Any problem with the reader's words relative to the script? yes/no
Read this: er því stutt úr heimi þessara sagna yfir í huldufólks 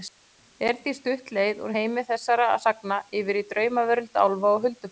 yes